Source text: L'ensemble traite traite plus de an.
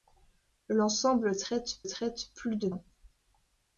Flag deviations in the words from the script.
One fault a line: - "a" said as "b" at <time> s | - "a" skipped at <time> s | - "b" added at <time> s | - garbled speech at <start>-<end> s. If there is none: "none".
none